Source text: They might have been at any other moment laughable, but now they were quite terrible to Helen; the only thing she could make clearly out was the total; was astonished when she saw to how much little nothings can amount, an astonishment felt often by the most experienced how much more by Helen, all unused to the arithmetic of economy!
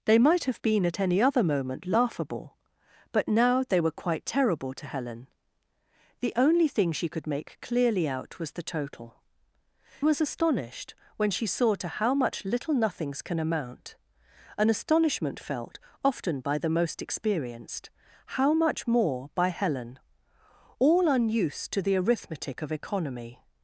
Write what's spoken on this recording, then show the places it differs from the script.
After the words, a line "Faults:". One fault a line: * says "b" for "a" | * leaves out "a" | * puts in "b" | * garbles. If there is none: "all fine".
They might have been at any other moment laughable, but now they were quite terrible to Helen; the only thing she could make clearly out was the total; was astonished when she saw to how much little nothings can amount, an astonishment felt often by the most experienced how much more by Helen, all unused to the arithmetic of economy!
Faults:
all fine